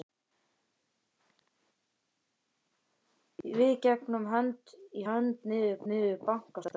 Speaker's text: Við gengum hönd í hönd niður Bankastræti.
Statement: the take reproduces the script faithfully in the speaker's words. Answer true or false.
false